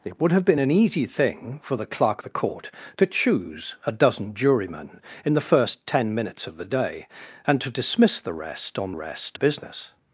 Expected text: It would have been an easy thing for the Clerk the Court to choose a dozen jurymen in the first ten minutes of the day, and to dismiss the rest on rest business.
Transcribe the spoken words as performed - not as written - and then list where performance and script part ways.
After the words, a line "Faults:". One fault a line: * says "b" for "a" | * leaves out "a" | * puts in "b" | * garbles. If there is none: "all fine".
It would have been an easy thing for the Clerk the Court to choose a dozen jurymen in the first ten minutes of the day, and to dismiss the rest on rest business.
Faults:
all fine